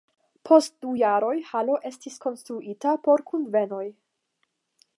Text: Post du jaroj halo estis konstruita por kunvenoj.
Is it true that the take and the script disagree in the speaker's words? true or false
false